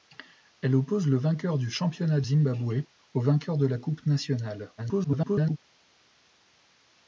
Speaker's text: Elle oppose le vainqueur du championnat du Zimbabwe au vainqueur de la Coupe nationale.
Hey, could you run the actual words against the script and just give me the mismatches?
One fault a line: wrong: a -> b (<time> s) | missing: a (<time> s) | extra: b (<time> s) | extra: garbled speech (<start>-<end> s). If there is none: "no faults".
missing: du (2.2 s)
extra: garbled speech (4.8-5.6 s)